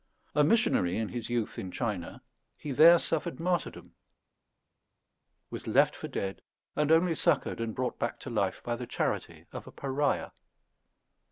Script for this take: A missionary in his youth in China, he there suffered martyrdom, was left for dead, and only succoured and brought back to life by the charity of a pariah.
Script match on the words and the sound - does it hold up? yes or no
yes